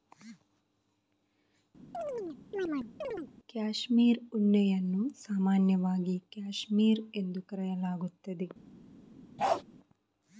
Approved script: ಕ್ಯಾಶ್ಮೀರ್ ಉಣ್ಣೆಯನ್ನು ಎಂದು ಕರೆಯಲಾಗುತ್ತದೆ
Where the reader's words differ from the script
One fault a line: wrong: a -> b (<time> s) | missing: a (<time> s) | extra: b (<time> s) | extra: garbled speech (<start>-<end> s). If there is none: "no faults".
extra: ಸಾಮಾನ್ಯವಾಗಿ ಕ್ಯಾಶ್ಮೀರ್ (5.2 s)